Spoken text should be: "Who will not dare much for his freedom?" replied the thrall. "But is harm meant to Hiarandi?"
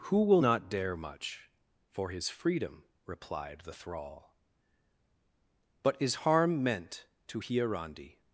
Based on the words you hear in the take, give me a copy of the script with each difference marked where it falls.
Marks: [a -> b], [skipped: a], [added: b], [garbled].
"Who will not dare much for his freedom?" replied the thrall. "But is harm meant to Hiarandi?"